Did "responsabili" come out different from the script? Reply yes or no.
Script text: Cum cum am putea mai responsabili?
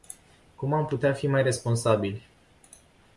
no